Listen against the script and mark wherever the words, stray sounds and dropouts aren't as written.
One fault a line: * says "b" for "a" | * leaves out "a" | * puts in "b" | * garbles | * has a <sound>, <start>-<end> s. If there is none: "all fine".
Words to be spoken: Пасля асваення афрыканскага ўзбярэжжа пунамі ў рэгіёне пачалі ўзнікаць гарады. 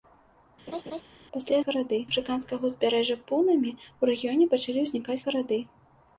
* has a laugh, 0.7-1.0 s
* says "гарады" for "асваення"